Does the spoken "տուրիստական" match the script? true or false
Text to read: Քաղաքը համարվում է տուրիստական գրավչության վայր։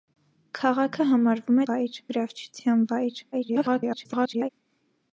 false